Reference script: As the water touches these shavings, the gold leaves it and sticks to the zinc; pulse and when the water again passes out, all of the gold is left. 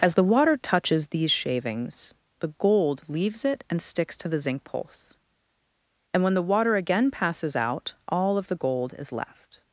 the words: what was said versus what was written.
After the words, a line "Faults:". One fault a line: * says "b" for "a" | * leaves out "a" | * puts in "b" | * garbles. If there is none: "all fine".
As the water touches these shavings, the gold leaves it and sticks to the zinc; pulse and when the water again passes out, all of the gold is left.
Faults:
all fine